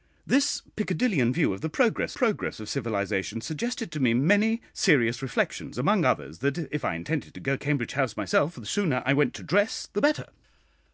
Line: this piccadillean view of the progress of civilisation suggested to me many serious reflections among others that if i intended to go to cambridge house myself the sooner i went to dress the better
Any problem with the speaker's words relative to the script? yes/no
yes